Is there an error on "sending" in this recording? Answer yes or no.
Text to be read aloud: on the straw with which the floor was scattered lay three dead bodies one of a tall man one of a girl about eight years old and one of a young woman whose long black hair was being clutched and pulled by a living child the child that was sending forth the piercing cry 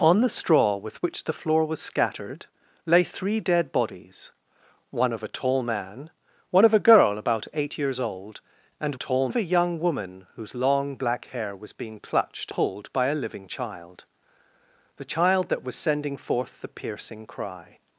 no